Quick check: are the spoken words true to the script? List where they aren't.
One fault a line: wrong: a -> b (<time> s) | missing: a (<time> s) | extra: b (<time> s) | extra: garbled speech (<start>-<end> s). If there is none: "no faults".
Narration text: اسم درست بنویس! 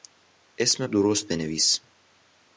no faults